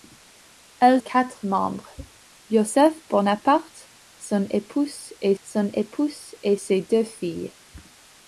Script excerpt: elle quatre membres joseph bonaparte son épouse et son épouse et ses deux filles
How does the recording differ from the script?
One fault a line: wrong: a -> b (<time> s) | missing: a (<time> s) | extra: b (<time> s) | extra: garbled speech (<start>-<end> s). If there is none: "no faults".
no faults